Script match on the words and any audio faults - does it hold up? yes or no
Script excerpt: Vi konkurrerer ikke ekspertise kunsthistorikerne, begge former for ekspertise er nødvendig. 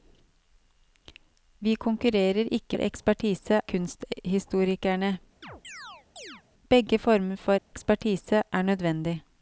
no